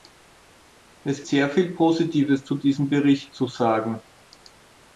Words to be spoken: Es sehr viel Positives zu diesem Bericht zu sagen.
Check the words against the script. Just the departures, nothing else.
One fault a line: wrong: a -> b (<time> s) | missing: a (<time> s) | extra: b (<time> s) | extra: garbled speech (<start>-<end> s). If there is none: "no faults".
no faults